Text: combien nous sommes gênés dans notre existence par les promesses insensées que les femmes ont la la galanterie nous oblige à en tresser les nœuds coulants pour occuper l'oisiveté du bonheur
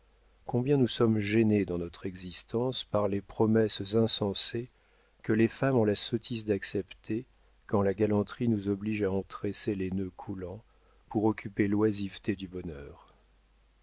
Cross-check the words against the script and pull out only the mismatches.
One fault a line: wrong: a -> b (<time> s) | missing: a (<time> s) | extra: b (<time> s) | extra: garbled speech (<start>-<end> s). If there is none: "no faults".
extra: sottise d'accepter quand (6.0 s)